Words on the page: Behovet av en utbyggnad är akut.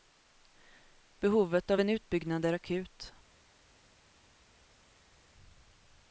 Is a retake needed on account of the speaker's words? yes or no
no